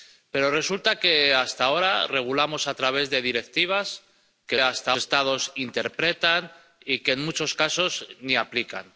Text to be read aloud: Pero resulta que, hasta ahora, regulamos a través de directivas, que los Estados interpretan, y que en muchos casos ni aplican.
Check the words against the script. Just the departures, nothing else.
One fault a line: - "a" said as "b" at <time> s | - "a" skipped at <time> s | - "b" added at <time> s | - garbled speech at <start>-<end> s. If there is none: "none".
- "los" said as "hasta" at 4.6 s